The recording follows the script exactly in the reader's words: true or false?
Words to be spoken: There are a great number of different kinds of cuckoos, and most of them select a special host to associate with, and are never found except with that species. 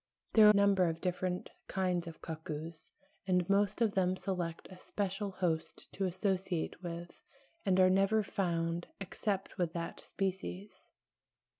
false